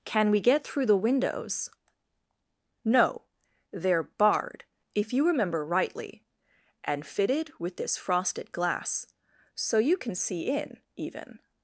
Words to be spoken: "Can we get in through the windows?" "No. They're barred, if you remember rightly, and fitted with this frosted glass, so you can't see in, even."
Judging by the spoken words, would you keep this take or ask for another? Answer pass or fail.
fail